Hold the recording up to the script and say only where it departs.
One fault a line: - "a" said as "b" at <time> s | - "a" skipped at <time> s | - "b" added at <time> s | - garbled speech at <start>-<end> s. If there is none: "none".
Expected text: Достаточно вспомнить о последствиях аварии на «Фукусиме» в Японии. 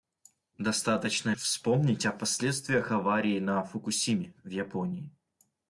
none